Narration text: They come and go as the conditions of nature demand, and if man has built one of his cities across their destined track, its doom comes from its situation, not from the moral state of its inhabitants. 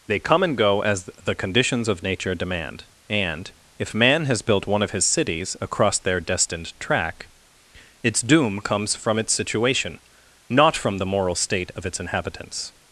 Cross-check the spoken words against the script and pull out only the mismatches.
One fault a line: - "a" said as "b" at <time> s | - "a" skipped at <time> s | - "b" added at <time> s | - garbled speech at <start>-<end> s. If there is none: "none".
none